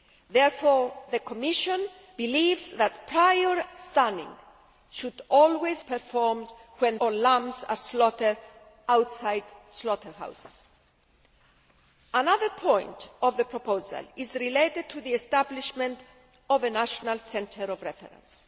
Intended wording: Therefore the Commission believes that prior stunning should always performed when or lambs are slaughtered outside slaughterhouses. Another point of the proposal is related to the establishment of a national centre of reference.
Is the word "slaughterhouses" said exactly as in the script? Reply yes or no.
yes